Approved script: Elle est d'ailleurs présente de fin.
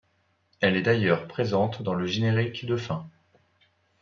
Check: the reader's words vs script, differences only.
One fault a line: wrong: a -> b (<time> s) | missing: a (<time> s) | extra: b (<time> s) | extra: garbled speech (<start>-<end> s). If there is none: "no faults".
extra: dans le générique (1.8 s)